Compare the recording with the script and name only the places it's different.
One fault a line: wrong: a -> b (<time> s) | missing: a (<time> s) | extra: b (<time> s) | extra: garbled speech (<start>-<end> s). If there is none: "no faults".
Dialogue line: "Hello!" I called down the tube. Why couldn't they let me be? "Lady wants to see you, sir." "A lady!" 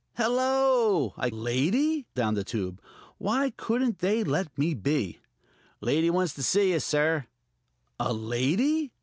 wrong: called -> lady (1.3 s)